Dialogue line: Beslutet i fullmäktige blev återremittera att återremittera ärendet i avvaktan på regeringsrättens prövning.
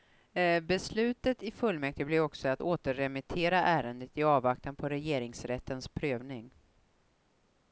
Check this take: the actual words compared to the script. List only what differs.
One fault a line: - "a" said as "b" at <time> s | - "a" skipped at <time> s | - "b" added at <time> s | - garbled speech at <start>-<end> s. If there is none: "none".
- "återremittera" said as "också" at 2.2 s